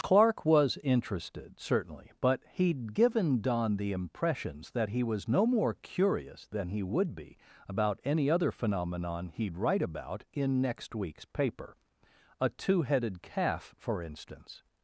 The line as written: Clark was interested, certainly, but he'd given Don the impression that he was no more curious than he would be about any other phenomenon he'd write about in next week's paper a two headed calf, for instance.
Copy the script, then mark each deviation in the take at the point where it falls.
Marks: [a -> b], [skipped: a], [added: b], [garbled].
Clark was interested, certainly, but he'd given Don the [impression -> impressions] that he was no more curious than he would be about any other phenomenon he'd write about in next week's paper a two headed calf, for instance.